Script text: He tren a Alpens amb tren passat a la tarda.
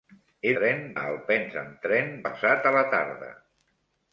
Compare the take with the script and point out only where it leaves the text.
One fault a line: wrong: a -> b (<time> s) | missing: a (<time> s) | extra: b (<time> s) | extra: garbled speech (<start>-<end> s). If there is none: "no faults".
no faults